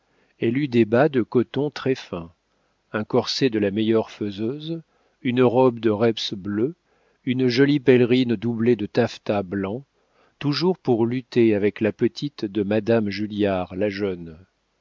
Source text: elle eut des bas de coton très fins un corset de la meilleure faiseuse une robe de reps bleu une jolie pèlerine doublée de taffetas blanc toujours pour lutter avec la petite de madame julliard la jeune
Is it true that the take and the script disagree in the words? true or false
false